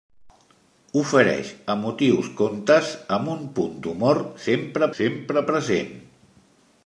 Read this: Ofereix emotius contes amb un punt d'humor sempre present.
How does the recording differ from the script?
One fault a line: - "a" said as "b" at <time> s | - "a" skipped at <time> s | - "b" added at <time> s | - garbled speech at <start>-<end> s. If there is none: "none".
- "sempre" added at 5.0 s